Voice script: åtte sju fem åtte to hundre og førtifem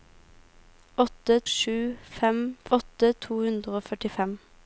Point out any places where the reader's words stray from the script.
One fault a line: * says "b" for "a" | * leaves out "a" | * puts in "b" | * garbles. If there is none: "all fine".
all fine